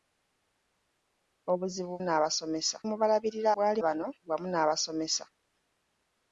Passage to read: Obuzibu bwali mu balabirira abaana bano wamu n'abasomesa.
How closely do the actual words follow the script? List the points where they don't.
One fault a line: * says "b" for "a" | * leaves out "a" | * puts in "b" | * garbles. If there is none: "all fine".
* says "n'abasomesa" for "bwali"
* says "bwali" for "abaana"